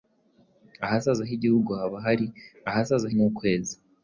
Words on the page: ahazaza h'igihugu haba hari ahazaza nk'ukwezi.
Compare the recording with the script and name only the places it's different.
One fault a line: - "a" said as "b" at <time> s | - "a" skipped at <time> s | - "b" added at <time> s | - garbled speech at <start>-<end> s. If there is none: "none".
none